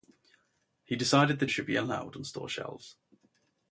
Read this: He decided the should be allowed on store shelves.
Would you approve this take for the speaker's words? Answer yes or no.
yes